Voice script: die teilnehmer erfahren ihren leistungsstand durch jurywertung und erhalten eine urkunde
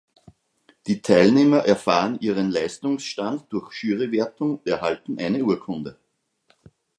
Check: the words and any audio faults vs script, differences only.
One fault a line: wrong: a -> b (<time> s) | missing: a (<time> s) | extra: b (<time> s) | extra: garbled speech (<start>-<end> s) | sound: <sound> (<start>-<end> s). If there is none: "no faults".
missing: und (4.6 s)